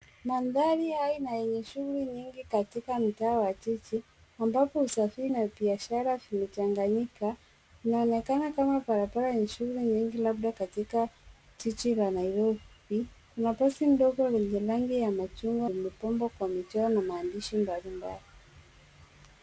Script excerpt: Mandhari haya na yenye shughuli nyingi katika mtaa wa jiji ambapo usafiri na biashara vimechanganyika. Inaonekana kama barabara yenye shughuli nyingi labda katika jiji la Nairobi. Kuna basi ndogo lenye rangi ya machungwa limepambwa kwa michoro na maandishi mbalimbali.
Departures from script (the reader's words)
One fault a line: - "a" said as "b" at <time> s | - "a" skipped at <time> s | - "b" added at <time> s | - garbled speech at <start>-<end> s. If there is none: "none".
none